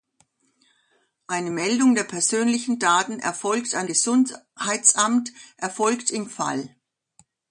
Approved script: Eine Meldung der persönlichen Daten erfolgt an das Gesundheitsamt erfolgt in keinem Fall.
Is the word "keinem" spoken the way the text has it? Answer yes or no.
no